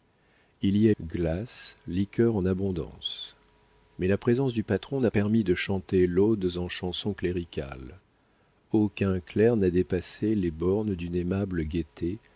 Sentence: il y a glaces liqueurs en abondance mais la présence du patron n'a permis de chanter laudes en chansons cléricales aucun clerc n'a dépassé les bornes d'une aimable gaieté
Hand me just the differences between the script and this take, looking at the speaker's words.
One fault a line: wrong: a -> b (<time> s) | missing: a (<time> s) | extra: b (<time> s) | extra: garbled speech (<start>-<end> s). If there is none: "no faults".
no faults